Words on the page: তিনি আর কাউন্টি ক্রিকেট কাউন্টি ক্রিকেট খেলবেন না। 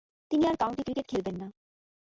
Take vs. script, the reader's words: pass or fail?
fail